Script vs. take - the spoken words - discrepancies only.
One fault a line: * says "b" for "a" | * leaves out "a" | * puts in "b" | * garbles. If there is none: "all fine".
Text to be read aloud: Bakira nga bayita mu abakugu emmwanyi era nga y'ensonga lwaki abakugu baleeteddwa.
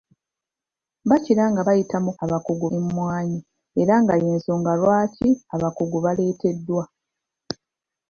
all fine